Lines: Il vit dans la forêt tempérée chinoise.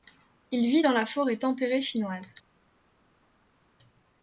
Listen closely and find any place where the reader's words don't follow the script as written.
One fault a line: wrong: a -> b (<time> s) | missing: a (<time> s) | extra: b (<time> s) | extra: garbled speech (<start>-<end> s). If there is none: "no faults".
no faults